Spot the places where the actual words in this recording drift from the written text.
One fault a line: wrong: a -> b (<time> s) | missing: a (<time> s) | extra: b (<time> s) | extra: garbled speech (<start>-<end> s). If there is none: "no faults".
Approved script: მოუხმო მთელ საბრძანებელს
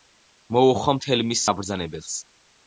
extra: მის (1.3 s)